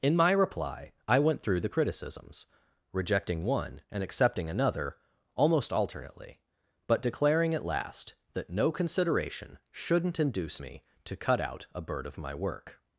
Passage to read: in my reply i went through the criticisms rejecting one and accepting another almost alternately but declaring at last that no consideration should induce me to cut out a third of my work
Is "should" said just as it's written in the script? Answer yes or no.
no